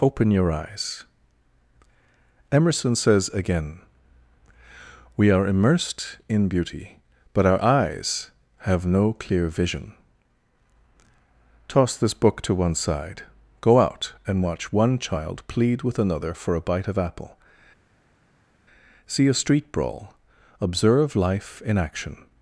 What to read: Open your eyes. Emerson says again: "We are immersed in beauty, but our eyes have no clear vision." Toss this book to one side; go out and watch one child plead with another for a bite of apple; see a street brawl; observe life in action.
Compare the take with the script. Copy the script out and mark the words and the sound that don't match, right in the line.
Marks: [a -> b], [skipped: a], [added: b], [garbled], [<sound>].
Open your eyes. Emerson says again: "We are immersed in beauty, but our eyes have no clear vision." Toss this book to one side; go out and watch one child plead with another for a bite of apple; see a street brawl; observe life in action.